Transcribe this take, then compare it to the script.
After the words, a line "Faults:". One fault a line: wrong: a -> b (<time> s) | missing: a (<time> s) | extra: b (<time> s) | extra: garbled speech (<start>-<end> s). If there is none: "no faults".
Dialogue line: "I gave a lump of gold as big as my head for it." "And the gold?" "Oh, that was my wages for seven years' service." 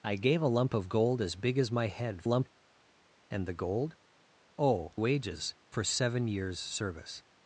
"I gave a lump of gold as big as my head lump it." "And the gold?" "Oh, wages for seven years' service."
Faults:
wrong: for -> lump (2.2 s)
missing: that was my (4.9 s)